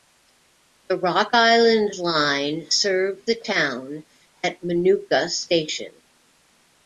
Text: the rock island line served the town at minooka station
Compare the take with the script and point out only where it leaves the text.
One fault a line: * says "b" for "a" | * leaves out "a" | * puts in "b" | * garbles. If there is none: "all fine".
all fine